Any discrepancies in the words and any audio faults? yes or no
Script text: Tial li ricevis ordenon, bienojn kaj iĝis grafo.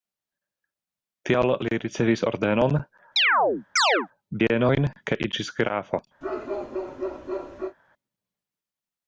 yes